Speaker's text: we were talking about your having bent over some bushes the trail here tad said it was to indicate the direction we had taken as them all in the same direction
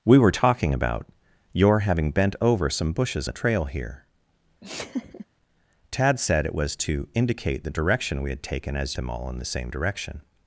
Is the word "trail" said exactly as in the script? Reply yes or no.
yes